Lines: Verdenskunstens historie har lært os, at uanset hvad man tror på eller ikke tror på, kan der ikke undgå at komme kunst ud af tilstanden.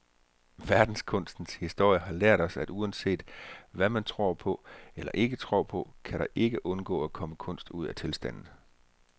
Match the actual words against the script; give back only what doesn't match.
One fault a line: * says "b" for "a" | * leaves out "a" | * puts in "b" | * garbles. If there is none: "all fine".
all fine